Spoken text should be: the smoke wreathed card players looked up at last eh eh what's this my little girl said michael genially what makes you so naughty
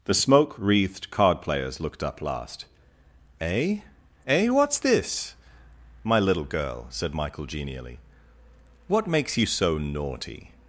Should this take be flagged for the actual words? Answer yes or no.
yes